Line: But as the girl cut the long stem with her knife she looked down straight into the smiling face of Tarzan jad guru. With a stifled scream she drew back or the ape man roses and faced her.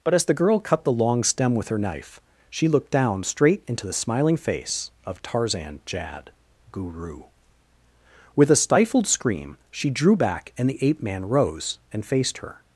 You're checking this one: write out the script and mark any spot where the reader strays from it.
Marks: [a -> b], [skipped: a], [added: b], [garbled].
But as the girl cut the long stem with her knife she looked down straight into the smiling face of Tarzan jad guru. With a stifled scream she drew back [or -> and] the ape man [roses -> rose] and faced her.